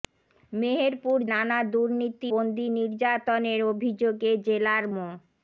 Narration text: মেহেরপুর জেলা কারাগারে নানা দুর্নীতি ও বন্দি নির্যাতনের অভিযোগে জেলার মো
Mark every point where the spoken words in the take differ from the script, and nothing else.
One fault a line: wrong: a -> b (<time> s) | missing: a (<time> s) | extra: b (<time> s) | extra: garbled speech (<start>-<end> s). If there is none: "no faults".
missing: জেলা কারাগারে (1.2 s)
missing: ও (2.3 s)